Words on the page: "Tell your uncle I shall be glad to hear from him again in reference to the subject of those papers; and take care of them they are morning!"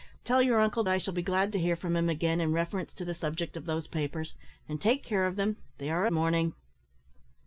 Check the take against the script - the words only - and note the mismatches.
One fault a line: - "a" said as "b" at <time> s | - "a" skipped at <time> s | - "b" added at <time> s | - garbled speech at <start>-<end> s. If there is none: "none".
none